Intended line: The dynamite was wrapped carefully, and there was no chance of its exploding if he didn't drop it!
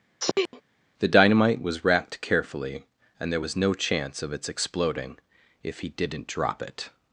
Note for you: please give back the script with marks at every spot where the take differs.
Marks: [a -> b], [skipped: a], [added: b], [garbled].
The dynamite was wrapped carefully, and there was no chance of its exploding if he didn't drop it!